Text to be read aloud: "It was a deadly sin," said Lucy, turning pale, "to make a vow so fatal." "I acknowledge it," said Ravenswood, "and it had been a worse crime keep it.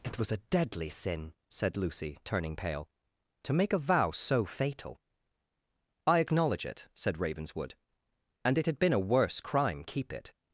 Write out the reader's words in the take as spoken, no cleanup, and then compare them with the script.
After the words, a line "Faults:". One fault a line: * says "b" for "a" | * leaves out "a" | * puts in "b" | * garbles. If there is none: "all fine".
"It was a deadly sin," said Lucy, turning pale, "to make a vow so fatal." "I acknowledge it," said Ravenswood, "and it had been a worse crime keep it.
Faults:
all fine